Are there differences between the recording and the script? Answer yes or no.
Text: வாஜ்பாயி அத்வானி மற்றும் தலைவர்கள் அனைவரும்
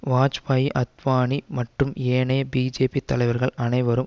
yes